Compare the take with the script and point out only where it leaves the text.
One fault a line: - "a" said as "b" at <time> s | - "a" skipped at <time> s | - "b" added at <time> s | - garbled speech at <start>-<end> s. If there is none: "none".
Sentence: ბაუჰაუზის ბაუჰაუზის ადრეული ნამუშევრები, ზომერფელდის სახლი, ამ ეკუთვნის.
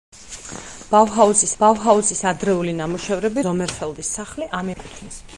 none